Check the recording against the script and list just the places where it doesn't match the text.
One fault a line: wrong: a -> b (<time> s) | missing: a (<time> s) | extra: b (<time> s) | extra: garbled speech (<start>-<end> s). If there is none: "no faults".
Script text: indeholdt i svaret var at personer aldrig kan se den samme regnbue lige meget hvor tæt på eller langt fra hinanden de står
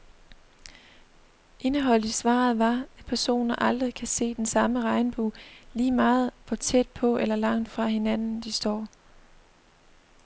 no faults